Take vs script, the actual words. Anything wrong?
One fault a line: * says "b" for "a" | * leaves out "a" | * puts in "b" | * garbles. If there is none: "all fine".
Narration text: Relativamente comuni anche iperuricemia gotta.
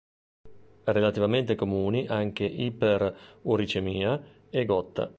* puts in "e"